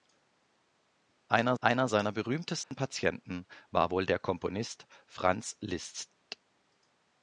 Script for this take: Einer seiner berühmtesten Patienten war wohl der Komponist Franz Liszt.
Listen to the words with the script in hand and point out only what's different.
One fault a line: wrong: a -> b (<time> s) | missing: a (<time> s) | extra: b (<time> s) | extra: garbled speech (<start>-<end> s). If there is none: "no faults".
extra: einer (1.6 s)